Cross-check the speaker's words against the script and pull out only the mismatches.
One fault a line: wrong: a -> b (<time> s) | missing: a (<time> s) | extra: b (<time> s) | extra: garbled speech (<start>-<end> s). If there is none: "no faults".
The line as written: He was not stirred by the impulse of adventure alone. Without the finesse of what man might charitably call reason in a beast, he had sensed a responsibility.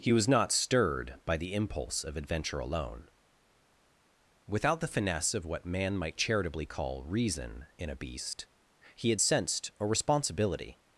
no faults